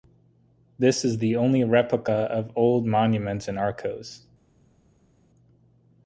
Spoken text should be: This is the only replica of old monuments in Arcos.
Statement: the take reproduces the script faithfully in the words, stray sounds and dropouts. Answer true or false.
true